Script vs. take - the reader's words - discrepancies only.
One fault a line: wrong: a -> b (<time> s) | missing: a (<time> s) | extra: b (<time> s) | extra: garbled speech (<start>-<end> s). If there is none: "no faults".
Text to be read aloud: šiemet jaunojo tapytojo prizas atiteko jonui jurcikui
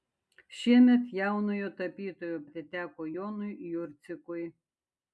missing: prizas (2.4 s)